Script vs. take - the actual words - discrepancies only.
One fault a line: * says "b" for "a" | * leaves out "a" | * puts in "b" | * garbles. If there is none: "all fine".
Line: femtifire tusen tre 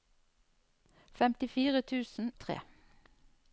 all fine